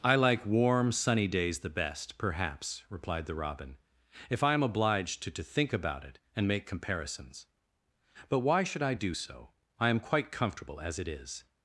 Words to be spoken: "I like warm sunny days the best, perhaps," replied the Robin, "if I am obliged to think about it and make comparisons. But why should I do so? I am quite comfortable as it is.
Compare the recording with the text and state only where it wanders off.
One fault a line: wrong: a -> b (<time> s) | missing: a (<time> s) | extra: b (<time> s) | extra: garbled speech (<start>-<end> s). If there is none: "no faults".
extra: to (5.3 s)